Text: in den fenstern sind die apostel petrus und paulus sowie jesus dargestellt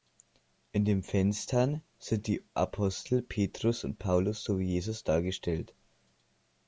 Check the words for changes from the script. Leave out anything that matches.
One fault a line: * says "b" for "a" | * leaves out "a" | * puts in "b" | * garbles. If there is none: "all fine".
all fine